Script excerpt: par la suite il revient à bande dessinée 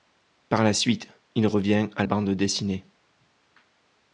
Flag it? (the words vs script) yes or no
no